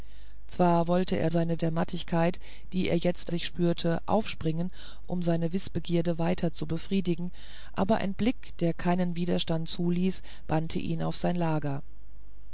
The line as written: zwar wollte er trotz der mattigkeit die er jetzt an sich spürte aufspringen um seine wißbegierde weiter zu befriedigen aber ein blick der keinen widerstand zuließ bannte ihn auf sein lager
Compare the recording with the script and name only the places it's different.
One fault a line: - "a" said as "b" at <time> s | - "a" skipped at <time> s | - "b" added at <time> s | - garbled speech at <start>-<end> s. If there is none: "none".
- "trotz" said as "seine" at 1.3 s
- "an" skipped at 3.3 s